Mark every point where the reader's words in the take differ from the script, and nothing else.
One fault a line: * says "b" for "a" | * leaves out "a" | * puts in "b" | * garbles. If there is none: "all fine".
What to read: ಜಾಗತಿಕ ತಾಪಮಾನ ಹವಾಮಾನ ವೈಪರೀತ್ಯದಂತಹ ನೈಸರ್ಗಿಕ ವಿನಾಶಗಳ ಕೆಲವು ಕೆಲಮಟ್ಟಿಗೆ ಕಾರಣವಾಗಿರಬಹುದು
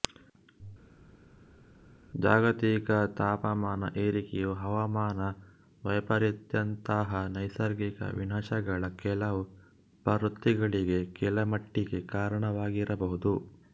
* puts in "ಏರಿಕೆಯು"
* puts in "ಪ್ರವೃತ್ತಿಗಳಿಗೆ"